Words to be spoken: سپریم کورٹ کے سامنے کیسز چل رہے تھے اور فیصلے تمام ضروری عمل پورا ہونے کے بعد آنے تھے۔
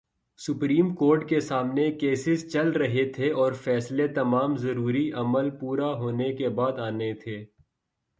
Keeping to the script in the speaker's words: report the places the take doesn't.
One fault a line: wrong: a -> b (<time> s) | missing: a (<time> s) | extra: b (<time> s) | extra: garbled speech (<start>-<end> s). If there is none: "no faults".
no faults